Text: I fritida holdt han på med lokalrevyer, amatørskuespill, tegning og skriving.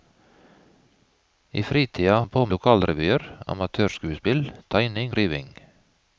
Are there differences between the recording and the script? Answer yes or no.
yes